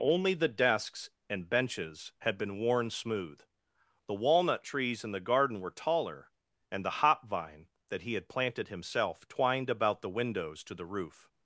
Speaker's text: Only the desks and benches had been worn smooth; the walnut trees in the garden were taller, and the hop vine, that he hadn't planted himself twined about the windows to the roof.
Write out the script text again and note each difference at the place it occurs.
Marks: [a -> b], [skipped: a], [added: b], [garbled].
Only the desks and benches had been worn smooth; the walnut trees in the garden were taller, and the hop vine, that he [hadn't -> had] planted himself twined about the windows to the roof.